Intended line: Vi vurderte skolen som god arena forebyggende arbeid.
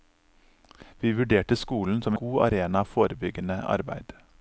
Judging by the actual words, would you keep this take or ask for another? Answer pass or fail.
pass